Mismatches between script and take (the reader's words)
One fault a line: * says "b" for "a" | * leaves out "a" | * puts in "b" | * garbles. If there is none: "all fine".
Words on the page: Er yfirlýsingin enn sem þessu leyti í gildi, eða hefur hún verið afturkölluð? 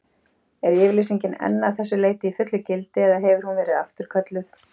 * says "að" for "sem"
* puts in "fullu"